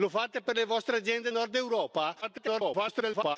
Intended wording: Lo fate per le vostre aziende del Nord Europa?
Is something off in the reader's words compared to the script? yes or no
yes